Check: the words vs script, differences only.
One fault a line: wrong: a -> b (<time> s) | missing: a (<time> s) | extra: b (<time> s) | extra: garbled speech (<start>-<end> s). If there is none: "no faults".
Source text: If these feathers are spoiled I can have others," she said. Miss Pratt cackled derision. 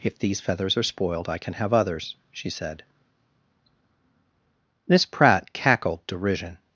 no faults